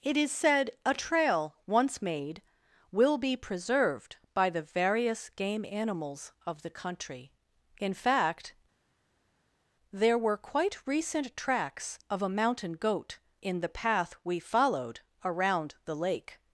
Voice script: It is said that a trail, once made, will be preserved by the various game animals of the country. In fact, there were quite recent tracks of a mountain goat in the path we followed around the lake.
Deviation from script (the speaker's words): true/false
true